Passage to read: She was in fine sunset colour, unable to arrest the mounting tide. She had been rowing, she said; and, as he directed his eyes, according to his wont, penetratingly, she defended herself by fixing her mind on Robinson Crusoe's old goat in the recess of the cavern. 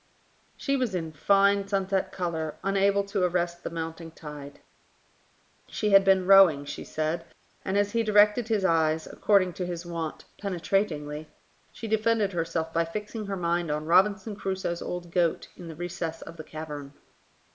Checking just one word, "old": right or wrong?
right